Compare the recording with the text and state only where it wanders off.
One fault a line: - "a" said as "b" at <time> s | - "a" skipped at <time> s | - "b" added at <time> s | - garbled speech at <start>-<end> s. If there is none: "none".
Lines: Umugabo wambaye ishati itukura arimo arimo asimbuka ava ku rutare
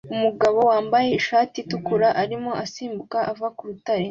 - "arimo" skipped at 2.5 s